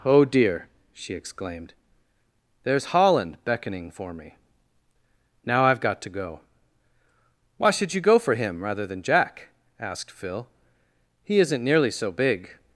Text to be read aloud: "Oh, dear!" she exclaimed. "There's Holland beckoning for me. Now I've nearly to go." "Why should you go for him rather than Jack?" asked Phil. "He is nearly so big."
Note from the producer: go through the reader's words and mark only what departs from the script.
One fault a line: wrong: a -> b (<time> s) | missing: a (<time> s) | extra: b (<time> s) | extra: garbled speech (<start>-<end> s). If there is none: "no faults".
wrong: nearly -> got (5.8 s)
wrong: is -> isn't (11.4 s)